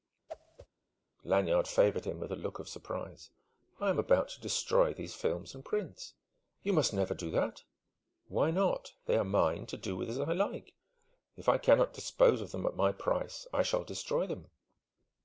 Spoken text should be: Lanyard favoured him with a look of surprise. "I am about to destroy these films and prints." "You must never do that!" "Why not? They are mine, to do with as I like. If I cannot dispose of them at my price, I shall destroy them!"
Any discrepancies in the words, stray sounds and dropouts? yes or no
yes